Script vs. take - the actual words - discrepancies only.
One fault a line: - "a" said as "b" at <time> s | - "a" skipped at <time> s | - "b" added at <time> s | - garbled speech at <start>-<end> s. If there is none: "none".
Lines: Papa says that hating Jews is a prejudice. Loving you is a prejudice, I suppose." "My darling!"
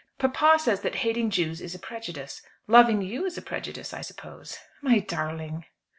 none